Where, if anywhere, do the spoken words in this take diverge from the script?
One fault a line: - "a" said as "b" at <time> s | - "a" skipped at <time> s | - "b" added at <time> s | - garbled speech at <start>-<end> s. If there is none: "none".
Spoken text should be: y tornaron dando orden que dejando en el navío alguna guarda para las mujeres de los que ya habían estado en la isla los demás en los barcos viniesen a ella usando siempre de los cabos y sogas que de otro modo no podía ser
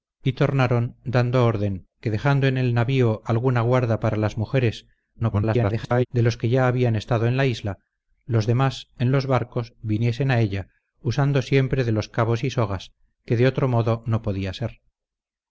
- garbled speech at 5.1-6.1 s